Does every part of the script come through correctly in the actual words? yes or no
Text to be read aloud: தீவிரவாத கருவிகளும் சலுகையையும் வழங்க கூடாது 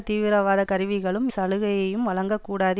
yes